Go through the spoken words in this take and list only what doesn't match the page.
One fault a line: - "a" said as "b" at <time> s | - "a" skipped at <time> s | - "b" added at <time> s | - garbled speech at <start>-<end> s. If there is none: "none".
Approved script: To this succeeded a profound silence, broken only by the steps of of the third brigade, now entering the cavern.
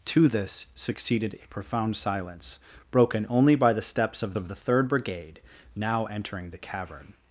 none